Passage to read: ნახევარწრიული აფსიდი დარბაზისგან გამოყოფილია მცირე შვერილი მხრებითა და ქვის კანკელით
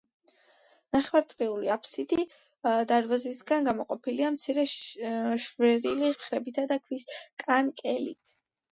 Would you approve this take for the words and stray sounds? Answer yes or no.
yes